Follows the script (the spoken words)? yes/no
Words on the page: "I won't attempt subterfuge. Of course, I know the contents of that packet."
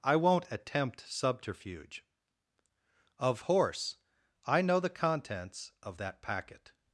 no